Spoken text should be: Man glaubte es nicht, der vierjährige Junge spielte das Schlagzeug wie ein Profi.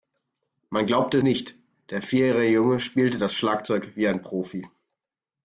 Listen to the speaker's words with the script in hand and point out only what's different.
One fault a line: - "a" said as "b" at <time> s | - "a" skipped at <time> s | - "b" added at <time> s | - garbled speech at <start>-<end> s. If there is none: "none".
- "es" skipped at 1.2 s